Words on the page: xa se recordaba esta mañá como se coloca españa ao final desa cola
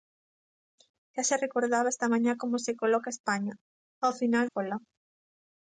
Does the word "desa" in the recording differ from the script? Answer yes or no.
yes